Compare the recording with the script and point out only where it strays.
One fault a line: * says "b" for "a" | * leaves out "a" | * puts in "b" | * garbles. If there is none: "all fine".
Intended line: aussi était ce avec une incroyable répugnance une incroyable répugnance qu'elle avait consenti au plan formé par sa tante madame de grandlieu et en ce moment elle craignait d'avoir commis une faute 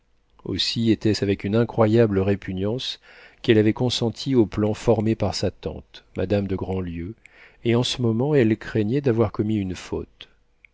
* leaves out "une incroyable répugnance"